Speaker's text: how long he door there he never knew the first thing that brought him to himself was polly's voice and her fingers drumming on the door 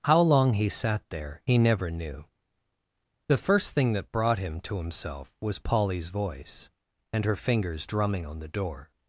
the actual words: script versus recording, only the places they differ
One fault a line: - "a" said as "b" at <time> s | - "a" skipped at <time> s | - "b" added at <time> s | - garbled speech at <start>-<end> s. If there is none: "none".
- "door" said as "sat" at 0.7 s